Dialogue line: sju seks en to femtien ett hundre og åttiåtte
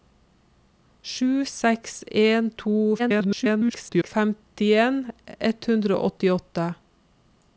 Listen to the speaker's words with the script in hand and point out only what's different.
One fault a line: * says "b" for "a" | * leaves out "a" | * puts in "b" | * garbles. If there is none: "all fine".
* garbles